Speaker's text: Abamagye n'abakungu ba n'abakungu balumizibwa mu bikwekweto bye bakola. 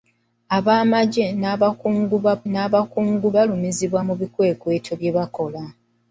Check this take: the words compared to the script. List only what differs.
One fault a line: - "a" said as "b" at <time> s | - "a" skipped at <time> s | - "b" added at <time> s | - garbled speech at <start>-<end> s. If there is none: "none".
none